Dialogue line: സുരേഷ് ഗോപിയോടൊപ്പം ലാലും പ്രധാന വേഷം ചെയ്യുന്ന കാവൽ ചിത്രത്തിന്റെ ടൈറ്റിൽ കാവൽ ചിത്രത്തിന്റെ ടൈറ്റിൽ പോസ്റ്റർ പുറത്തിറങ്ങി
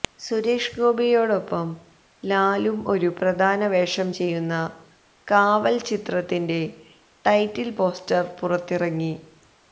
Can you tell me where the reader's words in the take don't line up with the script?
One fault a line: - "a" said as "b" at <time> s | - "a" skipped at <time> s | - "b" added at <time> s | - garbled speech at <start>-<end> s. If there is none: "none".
- "ഒരു" added at 2.9 s
- "കാവൽ ചിത്രത്തിന്റെ ടൈറ്റിൽ" skipped at 7.7 s